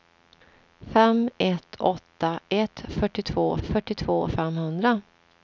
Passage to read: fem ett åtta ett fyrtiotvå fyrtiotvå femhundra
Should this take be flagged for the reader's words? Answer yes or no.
no